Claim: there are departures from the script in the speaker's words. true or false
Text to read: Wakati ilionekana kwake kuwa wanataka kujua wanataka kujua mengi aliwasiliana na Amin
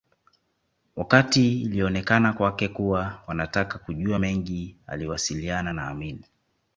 true